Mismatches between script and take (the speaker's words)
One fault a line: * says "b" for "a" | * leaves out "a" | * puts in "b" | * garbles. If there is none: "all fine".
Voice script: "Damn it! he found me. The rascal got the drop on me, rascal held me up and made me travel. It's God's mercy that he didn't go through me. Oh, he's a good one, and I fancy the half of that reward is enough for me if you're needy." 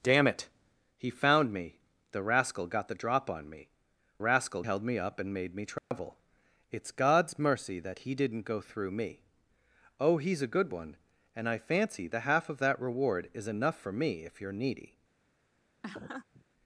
all fine